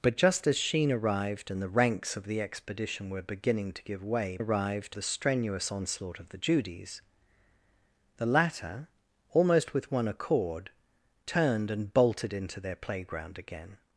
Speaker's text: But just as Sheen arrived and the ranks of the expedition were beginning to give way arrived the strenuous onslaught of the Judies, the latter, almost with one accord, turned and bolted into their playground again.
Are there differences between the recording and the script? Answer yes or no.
no